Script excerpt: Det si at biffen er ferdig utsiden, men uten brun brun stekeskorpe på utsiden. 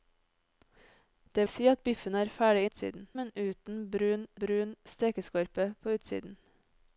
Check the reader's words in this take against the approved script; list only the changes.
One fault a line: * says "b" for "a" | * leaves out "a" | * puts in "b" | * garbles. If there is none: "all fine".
all fine